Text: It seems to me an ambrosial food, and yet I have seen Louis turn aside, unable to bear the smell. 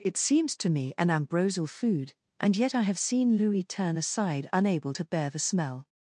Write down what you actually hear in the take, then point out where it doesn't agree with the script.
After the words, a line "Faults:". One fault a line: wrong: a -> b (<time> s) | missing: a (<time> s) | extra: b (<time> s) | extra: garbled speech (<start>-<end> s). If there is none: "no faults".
It seems to me an ambrosial food, and yet I have seen Louis turn aside, unable to bear the smell.
Faults:
no faults